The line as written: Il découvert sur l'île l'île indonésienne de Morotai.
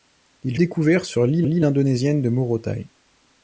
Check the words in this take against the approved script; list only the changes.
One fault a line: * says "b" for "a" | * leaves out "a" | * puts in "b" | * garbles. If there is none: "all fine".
all fine